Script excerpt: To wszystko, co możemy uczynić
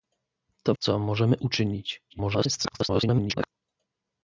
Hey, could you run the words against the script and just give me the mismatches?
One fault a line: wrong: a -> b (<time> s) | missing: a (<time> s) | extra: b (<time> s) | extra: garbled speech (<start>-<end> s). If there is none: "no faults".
missing: wszystko (0.8 s)
extra: garbled speech (2.1-3.5 s)